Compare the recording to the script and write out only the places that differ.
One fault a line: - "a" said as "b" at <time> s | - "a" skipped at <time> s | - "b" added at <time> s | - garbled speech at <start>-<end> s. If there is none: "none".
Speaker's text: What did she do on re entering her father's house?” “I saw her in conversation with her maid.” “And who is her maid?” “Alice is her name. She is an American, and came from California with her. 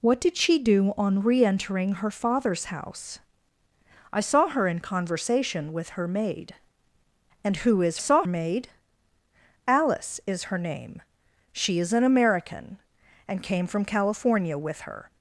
- "her" said as "saw" at 8.0 s